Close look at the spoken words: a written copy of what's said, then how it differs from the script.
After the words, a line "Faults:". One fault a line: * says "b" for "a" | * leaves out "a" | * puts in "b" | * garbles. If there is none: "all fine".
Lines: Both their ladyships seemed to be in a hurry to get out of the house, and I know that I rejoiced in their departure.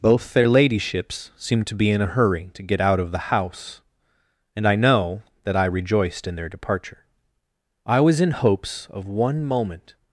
Both their ladyships seemed to be in a hurry to get out of the house, and I know that I rejoiced in their departure. I was in hopes of one moment
Faults:
* puts in "I was in hopes of one moment"